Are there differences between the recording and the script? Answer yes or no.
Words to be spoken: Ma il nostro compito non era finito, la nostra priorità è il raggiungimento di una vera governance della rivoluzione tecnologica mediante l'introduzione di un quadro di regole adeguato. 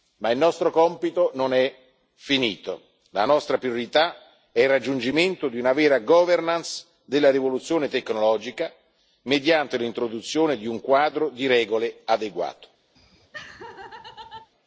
yes